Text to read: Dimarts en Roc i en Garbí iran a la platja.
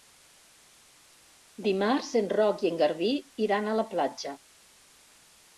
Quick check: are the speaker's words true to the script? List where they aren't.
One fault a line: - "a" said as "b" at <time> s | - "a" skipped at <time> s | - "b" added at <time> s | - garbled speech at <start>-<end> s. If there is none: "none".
none